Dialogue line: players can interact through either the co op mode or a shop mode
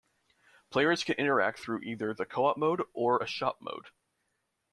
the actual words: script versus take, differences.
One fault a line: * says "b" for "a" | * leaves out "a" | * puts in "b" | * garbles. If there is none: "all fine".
all fine